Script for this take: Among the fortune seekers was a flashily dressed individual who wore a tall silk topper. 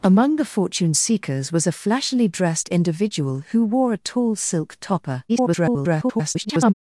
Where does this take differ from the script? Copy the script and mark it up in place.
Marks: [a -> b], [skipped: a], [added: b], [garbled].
Among the fortune seekers was a flashily dressed individual who wore a tall silk topper. [garbled]